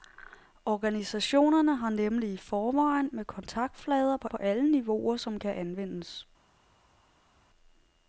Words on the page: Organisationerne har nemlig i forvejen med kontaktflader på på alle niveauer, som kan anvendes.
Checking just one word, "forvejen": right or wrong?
right